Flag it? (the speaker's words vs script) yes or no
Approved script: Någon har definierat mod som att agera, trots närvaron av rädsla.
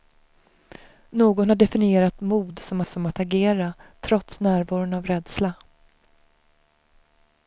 yes